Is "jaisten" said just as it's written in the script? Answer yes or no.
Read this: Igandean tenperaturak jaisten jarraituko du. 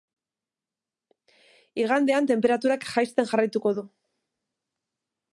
yes